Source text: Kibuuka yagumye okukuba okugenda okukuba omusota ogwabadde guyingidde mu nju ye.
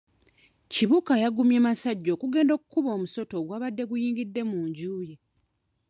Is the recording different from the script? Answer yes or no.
yes